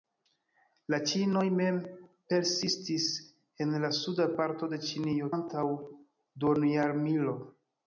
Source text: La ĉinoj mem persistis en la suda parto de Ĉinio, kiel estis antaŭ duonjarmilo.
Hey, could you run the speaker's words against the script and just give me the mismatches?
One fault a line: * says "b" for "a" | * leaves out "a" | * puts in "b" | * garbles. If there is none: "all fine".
* leaves out "kiel estis"